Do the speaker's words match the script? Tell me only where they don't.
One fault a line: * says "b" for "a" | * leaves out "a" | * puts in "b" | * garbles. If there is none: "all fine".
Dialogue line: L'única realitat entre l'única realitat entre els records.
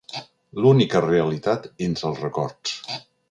* leaves out "l'única realitat entre"